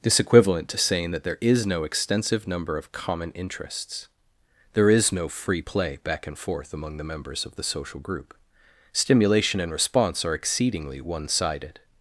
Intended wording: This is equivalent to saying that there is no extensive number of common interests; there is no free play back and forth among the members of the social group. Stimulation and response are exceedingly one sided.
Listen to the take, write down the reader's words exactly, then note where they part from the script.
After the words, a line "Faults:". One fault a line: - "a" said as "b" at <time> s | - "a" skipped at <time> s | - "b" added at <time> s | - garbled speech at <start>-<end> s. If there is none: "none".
This equivalent to saying that there is no extensive number of common interests; there is no free play back and forth among the members of the social group. Stimulation and response are exceedingly one sided.
Faults:
- "is" skipped at 0.2 s